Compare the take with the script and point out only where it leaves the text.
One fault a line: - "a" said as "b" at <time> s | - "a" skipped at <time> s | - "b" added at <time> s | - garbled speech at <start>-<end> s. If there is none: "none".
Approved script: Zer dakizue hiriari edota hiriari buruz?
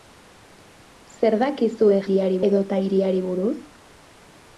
none